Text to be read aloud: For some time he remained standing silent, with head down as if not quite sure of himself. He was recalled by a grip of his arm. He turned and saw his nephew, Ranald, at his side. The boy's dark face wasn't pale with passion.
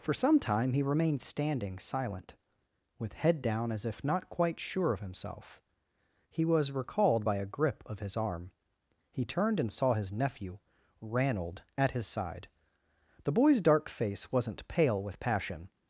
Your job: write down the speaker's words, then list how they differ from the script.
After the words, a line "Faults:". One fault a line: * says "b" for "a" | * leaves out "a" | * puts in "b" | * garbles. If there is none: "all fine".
For some time he remained standing silent, with head down as if not quite sure of himself. He was recalled by a grip of his arm. He turned and saw his nephew, Ranald, at his side. The boy's dark face wasn't pale with passion.
Faults:
all fine